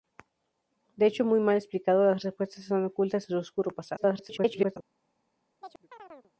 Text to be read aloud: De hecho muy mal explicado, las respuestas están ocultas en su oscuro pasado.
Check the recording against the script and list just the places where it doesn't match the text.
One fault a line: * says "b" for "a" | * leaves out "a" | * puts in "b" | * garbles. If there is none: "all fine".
* garbles